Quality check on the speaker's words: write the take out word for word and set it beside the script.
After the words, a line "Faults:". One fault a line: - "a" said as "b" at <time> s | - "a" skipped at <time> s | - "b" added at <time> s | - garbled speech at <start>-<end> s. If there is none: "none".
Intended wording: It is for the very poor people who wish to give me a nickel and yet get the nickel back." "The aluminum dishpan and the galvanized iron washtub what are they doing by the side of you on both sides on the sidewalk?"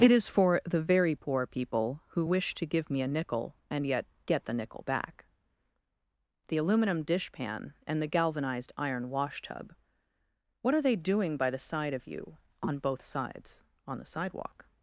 It is for the very poor people who wish to give me a nickel and yet get the nickel back." "The aluminum dishpan and the galvanized iron washtub what are they doing by the side of you on both sides on the sidewalk?"
Faults:
none